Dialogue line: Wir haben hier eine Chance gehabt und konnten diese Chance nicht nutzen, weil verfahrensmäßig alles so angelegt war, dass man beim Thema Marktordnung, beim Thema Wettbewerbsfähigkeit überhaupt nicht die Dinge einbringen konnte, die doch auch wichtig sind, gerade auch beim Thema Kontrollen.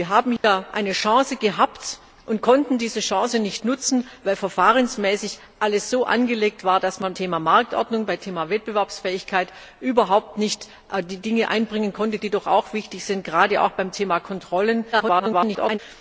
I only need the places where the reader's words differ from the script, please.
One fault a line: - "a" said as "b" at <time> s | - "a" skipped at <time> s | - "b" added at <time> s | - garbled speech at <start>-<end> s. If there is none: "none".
- "beim" skipped at 7.1 s
- garbled speech at 14.9-15.8 s